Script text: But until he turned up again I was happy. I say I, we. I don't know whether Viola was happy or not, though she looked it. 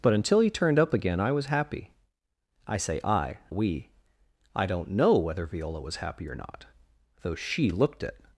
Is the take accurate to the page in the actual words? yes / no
yes